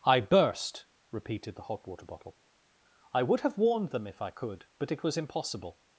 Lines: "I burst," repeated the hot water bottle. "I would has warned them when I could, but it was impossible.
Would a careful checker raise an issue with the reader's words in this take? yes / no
yes